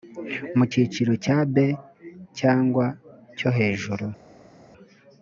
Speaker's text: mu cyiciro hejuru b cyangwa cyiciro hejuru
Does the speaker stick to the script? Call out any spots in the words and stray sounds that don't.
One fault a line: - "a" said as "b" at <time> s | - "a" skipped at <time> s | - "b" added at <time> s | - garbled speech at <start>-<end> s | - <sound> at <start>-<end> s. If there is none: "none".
- "hejuru" said as "cya" at 1.2 s
- "cyiciro" said as "cyo" at 3.4 s